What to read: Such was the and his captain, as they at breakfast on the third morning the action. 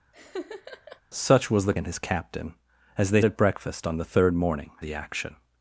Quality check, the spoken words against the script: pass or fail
pass